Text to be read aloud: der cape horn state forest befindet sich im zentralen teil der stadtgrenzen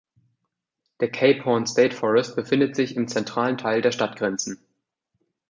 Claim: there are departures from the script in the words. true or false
false